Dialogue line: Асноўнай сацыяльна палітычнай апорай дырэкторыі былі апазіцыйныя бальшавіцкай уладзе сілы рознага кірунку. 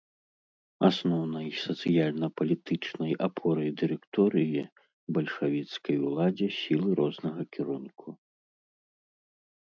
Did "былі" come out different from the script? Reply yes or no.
yes